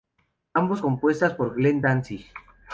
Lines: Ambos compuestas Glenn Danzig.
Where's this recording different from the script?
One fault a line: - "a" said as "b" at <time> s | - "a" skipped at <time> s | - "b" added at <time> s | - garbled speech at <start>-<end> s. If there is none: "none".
- "por" added at 1.3 s